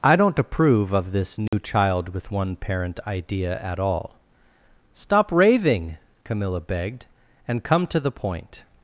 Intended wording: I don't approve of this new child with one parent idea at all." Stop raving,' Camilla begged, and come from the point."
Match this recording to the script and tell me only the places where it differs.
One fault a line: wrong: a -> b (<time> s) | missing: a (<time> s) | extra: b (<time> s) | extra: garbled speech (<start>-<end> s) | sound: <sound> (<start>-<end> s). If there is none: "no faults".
sound: dropout (1.5-1.5 s)
wrong: from -> to (7.9 s)